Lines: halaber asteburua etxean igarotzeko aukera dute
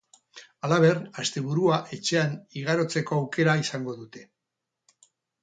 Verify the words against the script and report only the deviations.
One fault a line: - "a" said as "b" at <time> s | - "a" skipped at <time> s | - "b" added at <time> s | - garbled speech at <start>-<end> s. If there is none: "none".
- "izango" added at 3.6 s